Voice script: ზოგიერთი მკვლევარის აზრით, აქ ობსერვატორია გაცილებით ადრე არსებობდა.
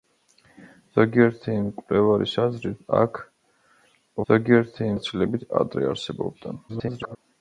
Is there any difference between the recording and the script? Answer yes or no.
yes